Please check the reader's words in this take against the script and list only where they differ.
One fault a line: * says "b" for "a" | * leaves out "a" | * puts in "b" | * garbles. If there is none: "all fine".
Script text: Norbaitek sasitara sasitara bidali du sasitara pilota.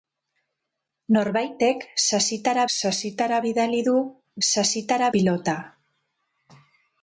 all fine